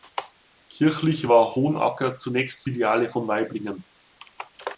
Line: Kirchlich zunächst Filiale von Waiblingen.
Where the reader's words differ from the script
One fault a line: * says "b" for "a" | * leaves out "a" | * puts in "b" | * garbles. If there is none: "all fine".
* puts in "war Hohenacker"